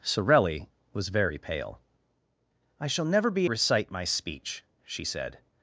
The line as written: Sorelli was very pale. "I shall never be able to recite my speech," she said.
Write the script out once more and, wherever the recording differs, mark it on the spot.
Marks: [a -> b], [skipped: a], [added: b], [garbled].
Sorelli was very pale. "I shall never be [skipped: able to] recite my speech," she said.